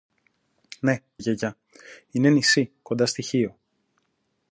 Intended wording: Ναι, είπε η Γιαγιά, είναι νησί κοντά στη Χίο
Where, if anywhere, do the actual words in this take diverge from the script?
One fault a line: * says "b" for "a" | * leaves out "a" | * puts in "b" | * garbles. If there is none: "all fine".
* leaves out "είπε"